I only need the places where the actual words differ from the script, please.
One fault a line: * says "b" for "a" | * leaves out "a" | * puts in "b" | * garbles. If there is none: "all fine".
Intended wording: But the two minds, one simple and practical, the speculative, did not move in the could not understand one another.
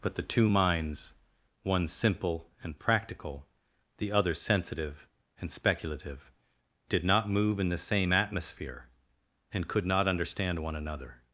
* puts in "other sensitive and"
* puts in "same atmosphere and"